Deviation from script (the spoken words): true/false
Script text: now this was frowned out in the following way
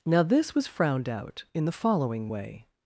false